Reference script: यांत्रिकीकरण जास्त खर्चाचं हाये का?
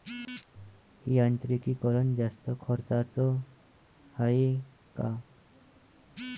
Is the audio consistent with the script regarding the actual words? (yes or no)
yes